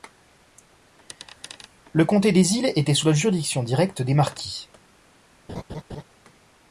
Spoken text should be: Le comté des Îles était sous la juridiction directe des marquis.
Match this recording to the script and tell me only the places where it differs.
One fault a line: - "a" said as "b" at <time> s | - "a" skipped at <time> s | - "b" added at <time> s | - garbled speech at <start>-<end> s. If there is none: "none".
none